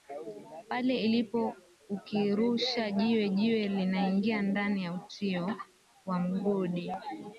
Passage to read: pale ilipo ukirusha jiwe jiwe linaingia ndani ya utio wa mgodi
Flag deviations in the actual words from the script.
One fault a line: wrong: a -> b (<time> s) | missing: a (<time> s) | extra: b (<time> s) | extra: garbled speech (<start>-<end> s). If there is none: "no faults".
no faults